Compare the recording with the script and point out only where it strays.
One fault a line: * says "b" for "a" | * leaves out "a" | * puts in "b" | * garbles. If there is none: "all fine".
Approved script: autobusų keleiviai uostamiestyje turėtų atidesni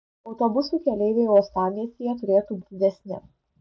all fine